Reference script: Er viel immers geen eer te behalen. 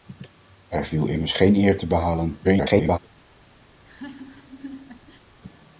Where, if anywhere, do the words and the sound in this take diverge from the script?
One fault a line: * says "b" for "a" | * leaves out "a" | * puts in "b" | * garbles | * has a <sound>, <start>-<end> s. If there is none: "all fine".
* garbles
* has a laugh, 3.7-5.3 s